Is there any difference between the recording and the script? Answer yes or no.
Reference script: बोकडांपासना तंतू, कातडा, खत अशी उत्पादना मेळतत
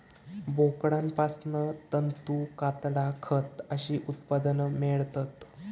no